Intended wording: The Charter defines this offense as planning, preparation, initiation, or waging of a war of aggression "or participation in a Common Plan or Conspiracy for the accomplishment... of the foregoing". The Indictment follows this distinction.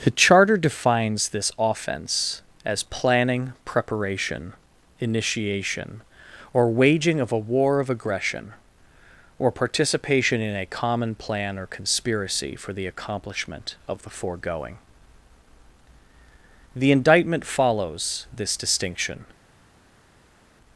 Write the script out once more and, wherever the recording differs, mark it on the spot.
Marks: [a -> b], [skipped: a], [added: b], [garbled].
The Charter defines this offense as planning, preparation, initiation, or waging of a war of aggression "or participation in a Common Plan or Conspiracy for the accomplishment... of the foregoing". The Indictment follows this distinction.